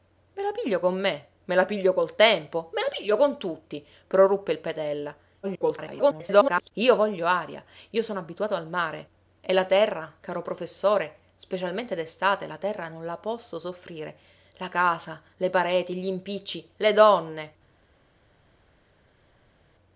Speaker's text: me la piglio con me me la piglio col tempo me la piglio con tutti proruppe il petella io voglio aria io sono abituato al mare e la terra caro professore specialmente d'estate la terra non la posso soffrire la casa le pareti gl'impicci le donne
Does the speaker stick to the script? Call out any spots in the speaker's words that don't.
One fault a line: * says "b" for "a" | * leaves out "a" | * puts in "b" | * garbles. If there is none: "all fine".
* garbles